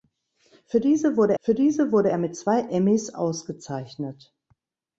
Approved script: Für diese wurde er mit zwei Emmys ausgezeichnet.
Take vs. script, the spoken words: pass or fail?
fail